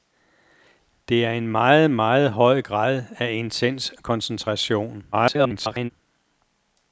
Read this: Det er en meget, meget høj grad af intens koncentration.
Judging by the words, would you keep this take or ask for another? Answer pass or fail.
fail